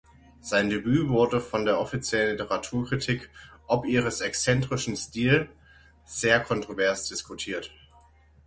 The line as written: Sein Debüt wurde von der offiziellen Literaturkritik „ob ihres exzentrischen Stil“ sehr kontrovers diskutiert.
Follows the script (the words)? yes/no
yes